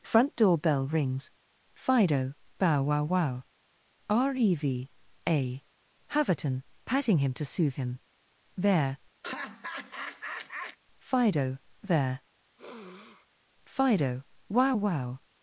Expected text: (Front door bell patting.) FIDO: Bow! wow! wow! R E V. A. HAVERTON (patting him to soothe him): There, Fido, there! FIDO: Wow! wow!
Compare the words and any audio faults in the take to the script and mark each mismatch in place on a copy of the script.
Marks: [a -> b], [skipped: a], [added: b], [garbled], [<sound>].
(Front door bell [patting.) -> rings] FIDO: Bow! wow! wow! R E V. A. HAVERTON (patting him to soothe him): There, [laugh] Fido, there! [sniff] FIDO: Wow! wow!